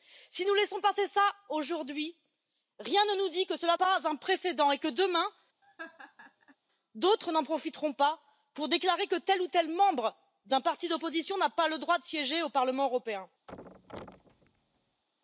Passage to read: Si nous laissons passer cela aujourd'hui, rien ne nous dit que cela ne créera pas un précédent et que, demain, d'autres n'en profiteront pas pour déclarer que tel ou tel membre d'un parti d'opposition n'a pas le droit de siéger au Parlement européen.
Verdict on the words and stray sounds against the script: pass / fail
fail